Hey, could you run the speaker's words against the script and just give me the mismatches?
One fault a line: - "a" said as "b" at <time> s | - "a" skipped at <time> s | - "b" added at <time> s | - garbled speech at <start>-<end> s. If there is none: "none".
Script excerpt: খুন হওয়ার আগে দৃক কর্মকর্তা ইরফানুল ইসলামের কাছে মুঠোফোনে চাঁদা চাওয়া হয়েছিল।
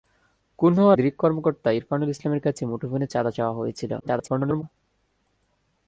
- "আগে" skipped at 1.0 s
- garbled speech at 4.0-4.6 s